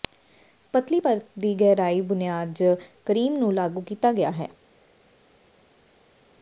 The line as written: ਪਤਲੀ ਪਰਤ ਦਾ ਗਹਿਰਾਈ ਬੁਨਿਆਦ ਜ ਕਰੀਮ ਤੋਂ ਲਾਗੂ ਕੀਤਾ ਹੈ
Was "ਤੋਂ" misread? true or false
true